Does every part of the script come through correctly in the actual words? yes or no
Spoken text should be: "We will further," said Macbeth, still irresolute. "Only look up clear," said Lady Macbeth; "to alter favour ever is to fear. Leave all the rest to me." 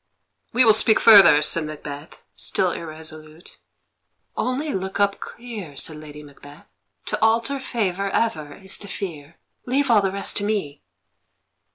no